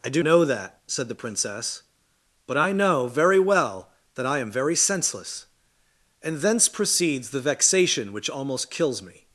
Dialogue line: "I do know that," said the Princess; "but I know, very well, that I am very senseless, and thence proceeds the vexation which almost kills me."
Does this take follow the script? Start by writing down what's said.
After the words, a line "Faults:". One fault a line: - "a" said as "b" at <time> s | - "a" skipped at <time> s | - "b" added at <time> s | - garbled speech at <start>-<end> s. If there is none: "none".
"I do know that," said the Princess; "but I know, very well, that I am very senseless, and thence proceeds the vexation which almost kills me."
Faults:
none